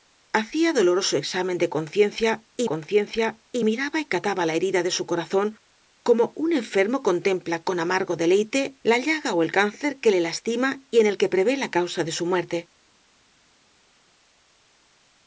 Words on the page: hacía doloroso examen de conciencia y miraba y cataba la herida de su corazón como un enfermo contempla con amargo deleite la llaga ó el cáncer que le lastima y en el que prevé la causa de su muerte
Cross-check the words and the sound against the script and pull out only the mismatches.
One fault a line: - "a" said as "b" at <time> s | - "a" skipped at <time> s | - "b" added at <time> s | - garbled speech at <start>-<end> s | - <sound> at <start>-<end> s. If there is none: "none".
- "conciencia y" added at 2.6 s